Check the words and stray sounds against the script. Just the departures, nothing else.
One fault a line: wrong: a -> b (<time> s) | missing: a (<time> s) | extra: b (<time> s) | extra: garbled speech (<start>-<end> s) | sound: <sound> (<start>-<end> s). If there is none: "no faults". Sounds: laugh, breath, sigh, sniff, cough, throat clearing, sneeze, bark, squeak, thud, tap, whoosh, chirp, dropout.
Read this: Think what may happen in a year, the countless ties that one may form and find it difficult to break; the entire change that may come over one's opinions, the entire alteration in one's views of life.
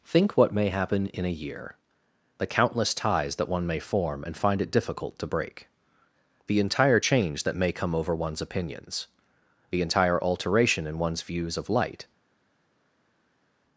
wrong: life -> light (11.7 s)